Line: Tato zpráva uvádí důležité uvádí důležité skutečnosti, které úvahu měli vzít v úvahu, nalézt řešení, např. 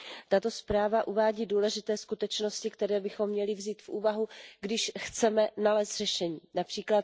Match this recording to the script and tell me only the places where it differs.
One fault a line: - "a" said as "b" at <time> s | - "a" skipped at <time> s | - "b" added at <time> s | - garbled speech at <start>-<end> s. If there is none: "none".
- "uvádí důležité" skipped at 2.0 s
- "úvahu" said as "bychom" at 3.0 s
- "když chceme" added at 4.6 s